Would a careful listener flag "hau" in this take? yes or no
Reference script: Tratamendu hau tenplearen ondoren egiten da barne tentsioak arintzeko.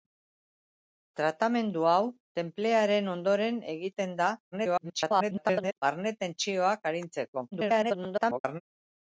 no